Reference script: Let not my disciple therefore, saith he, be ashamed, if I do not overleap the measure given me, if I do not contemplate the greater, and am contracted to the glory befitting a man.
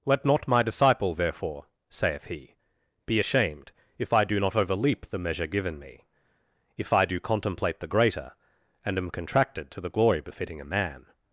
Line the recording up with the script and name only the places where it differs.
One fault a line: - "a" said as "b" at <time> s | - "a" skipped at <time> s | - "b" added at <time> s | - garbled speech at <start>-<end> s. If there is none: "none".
- "not" skipped at 7.2 s